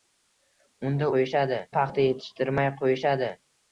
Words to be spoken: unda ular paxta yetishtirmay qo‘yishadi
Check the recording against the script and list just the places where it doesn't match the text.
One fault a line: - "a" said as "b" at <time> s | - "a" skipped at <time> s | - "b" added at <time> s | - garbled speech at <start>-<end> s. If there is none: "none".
- "ular" said as "qo‘yishadi" at 1.2 s